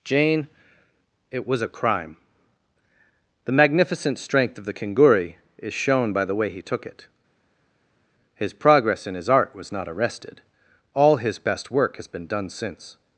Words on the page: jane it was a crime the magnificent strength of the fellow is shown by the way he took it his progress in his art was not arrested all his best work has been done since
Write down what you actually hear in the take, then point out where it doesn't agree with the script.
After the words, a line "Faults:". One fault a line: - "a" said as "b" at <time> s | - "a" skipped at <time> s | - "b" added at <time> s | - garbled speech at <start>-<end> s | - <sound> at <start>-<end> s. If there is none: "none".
jane it was a crime the magnificent strength of the kinguri is shown by the way he took it his progress in his art was not arrested all his best work has been done since
Faults:
- "fellow" said as "kinguri" at 4.7 s